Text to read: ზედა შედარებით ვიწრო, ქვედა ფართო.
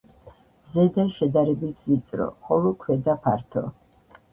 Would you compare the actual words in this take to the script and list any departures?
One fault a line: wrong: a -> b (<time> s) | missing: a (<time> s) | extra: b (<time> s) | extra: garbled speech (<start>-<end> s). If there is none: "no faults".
extra: ხოლო (2.5 s)